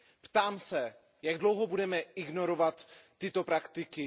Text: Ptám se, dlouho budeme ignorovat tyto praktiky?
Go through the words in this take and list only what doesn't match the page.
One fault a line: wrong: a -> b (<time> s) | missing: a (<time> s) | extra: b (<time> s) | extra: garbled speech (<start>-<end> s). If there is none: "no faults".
extra: jak (1.2 s)